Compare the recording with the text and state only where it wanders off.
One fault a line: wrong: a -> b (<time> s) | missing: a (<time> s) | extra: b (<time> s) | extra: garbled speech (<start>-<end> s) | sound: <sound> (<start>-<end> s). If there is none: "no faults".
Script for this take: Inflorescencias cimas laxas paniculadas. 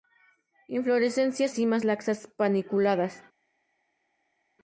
no faults